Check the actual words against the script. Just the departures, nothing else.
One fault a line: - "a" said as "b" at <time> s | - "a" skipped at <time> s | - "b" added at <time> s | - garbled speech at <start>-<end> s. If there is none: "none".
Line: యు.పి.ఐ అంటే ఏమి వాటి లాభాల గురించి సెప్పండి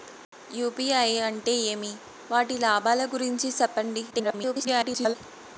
- garbled speech at 4.1-5.2 s